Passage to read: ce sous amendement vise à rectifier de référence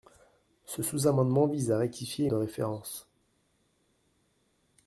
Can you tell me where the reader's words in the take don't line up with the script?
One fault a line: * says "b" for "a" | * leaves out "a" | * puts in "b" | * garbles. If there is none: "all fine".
all fine